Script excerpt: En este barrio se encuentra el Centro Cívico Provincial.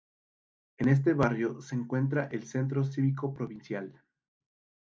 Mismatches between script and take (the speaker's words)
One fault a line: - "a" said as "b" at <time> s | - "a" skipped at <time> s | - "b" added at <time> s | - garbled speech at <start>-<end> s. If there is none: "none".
none